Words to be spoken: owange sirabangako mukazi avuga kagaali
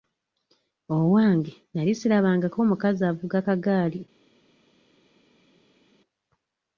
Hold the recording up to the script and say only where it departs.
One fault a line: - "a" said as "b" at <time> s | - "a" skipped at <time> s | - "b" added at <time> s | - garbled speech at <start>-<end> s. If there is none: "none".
- "nali" added at 1.7 s